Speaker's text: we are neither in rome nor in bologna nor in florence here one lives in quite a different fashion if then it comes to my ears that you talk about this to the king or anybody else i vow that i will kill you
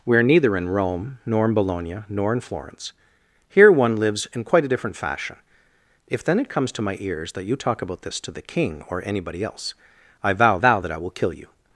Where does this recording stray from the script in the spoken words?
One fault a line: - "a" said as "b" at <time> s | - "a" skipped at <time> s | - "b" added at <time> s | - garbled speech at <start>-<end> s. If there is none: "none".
- "vow" added at 10.6 s